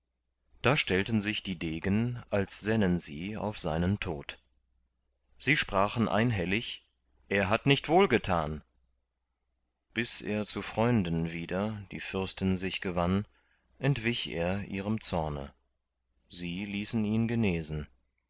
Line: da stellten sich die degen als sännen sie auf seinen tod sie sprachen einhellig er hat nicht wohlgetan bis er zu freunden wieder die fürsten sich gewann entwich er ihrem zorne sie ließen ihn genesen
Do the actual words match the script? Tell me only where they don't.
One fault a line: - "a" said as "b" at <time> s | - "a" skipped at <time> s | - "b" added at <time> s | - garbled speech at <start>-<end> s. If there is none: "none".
none